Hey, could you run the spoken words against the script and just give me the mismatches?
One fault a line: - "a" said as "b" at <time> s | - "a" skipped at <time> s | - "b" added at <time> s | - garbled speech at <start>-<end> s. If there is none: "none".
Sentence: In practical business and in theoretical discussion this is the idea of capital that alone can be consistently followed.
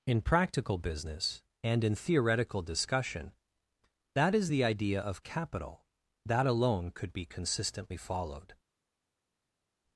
- "this" said as "that" at 4.2 s
- "can" said as "could" at 6.9 s